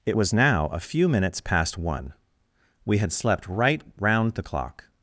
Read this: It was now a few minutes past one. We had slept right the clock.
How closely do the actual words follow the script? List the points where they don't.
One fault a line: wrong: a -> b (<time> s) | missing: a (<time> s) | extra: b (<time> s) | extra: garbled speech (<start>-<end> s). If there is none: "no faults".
extra: round (4.0 s)